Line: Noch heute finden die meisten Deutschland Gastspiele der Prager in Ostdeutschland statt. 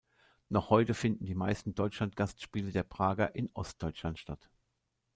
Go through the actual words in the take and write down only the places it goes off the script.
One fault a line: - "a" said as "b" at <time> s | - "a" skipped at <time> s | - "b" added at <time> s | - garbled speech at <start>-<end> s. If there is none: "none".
none